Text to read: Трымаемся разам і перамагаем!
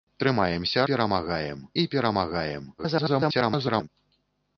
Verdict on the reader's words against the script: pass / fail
fail